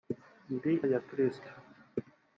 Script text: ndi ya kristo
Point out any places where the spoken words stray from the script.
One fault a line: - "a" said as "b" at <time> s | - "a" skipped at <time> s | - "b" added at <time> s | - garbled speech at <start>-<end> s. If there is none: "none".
none